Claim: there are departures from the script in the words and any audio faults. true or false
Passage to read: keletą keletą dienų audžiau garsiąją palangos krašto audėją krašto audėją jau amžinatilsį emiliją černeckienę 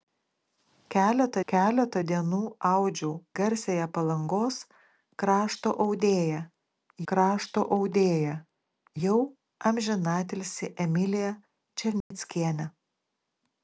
true